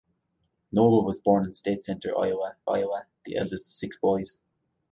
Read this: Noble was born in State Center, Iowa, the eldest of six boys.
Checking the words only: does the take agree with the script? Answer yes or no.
no